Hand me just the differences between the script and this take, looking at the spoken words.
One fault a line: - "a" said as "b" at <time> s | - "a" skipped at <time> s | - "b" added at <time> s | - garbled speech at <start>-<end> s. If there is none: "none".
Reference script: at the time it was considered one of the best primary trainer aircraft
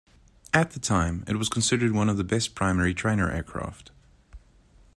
none